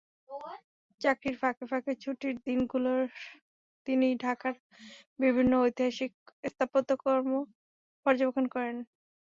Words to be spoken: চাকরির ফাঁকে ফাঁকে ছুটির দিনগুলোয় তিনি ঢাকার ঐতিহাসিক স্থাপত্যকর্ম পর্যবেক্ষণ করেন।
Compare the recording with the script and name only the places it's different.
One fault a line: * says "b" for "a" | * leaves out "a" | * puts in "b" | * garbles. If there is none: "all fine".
* puts in "বিভিন্ন"